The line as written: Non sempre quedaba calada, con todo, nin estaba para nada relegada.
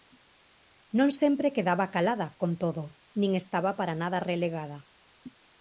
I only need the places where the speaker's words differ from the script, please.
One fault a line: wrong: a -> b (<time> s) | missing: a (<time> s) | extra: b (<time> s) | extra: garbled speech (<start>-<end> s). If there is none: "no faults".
no faults